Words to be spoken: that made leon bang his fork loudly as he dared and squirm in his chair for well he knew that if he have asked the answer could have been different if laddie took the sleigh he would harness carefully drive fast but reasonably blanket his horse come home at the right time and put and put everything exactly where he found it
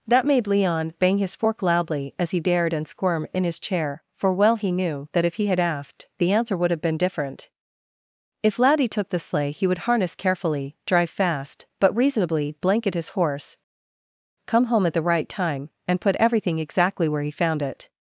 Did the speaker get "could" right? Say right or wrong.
wrong